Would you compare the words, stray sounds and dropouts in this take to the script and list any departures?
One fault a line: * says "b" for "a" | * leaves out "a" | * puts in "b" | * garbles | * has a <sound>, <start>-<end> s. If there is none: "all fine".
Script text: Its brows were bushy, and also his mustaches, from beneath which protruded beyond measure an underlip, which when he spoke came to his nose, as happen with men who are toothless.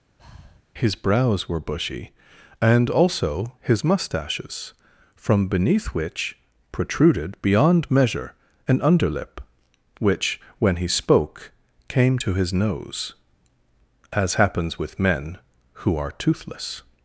* has a breath, 0.2-0.6 s
* says "His" for "Its"
* says "happens" for "happen"